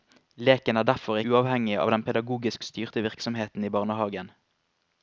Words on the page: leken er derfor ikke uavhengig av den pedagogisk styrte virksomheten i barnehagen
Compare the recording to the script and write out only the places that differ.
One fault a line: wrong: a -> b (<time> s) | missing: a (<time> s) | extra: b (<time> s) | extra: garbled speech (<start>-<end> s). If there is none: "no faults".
missing: ikke (1.2 s)